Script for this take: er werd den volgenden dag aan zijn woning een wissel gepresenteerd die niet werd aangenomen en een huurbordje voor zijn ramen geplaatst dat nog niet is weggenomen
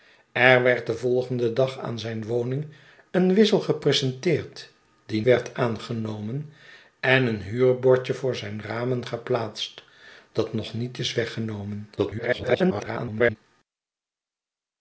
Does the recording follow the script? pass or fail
fail